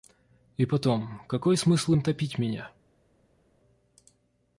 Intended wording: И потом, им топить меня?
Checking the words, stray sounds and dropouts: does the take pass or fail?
fail